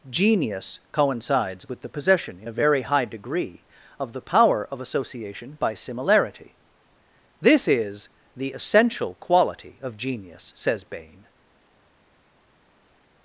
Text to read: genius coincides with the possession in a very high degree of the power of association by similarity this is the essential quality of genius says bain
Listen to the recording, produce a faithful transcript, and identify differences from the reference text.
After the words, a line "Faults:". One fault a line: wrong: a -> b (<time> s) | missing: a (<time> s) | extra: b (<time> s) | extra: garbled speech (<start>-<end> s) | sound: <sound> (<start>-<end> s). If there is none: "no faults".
genius coincides with the possession in a very high degree of the power of association by similarity this is the essential quality of genius says bain
Faults:
no faults